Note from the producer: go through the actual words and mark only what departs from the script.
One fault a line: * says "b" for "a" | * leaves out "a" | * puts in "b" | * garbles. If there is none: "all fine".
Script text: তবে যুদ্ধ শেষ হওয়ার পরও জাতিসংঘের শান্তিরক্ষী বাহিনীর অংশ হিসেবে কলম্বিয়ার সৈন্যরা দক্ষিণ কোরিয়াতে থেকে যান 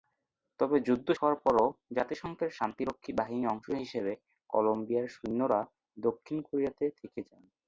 * leaves out "শেষ"